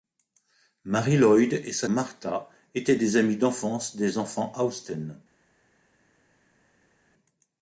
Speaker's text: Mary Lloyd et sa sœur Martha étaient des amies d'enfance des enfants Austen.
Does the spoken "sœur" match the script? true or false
false